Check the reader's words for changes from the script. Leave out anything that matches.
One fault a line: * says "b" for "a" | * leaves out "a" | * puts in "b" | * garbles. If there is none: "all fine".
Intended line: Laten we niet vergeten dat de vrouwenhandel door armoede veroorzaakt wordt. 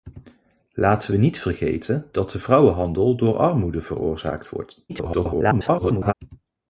* garbles